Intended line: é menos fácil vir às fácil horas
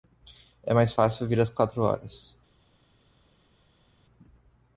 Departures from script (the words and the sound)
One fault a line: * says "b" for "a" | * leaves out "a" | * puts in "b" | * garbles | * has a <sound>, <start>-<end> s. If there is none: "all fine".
* says "mais" for "menos"
* says "quatro" for "fácil"